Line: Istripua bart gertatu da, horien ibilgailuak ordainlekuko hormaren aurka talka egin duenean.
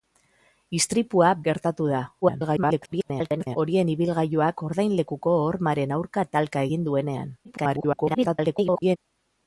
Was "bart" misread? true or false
true